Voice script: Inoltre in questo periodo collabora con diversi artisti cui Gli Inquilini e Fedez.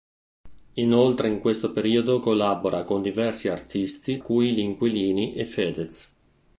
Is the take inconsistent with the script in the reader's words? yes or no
no